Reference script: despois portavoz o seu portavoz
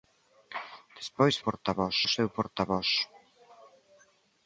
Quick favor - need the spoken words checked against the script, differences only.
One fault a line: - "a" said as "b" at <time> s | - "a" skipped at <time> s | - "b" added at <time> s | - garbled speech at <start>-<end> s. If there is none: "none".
none